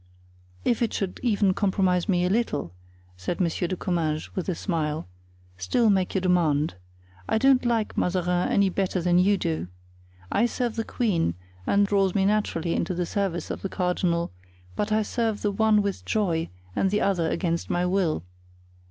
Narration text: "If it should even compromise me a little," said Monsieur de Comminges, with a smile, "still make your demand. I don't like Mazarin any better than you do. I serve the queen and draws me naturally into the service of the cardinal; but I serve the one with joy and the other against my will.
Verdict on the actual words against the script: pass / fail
pass